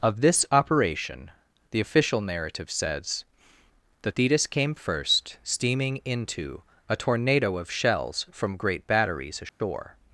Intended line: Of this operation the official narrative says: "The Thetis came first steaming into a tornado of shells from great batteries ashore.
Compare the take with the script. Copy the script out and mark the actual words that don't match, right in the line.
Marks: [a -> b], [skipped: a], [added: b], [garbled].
Of this operation the official narrative says: "The Thetis came first steaming into a tornado of shells from great batteries ashore.